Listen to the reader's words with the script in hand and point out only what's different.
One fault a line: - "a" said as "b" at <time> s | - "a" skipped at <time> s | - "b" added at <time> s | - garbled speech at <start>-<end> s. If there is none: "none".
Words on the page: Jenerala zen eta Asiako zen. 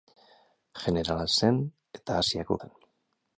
none